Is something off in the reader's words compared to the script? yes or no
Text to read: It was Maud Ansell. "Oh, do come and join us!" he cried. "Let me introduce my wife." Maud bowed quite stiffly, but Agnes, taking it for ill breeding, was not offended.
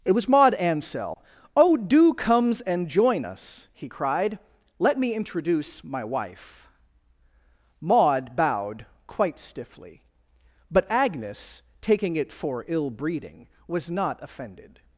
yes